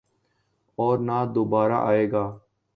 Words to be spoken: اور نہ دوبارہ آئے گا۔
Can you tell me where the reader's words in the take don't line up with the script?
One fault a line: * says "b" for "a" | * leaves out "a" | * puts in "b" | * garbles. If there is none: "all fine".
all fine